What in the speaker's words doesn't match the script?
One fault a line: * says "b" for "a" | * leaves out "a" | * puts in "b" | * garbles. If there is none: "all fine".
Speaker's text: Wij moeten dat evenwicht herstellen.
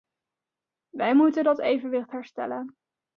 all fine